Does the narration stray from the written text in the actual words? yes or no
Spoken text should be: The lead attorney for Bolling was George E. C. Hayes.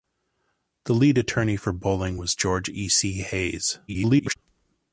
yes